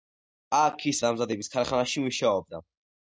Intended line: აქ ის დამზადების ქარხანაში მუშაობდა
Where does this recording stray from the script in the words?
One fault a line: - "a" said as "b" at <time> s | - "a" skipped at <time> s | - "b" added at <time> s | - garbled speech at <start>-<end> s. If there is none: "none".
none